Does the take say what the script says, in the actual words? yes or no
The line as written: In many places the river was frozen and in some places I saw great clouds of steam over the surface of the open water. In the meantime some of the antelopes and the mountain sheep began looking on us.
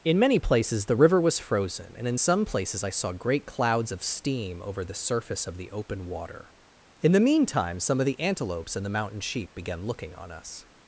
yes